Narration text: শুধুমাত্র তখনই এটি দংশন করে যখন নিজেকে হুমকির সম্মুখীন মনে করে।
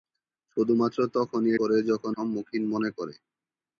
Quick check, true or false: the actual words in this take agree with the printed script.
false